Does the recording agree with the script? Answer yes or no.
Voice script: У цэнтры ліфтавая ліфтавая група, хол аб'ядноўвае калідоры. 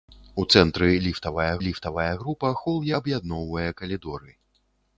yes